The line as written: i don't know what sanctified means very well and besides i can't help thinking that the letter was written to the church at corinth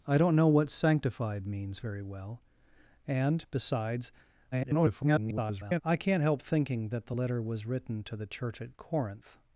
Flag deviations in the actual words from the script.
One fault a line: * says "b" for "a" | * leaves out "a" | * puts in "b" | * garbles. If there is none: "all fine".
* garbles